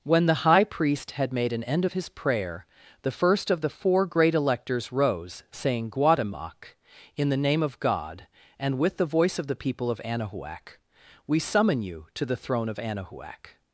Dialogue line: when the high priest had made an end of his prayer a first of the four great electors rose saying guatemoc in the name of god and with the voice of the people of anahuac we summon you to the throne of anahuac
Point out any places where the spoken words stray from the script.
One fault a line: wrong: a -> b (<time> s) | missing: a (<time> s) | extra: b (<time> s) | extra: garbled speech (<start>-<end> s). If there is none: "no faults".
wrong: a -> the (3.0 s)